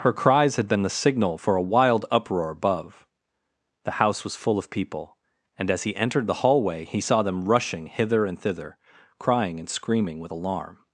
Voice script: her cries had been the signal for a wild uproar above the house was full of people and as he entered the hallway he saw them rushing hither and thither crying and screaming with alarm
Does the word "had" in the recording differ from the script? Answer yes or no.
no